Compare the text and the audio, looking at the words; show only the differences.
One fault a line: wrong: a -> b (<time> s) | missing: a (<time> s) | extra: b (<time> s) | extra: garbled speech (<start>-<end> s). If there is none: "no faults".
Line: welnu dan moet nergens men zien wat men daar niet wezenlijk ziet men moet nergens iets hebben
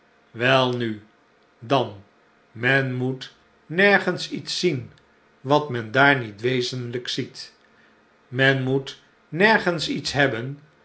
extra: men (2.5 s)
wrong: men -> iets (4.3 s)